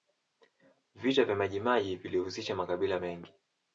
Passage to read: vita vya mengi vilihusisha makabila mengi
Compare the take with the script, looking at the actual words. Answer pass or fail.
fail